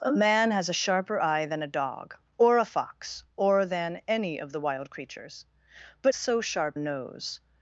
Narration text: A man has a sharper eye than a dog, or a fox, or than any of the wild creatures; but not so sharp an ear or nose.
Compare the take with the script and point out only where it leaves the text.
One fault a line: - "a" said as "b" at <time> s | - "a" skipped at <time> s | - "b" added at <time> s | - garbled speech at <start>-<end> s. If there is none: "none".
- "not" skipped at 6.1 s
- "an ear or" skipped at 6.8 s